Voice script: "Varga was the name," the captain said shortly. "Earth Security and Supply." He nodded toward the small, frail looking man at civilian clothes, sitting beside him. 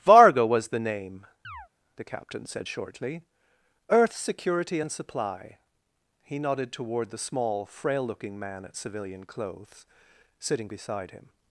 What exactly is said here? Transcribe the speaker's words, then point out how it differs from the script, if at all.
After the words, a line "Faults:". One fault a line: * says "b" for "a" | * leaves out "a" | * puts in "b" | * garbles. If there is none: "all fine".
"Varga was the name," the captain said shortly. "Earth Security and Supply." He nodded toward the small, frail looking man at civilian clothes, sitting beside him.
Faults:
all fine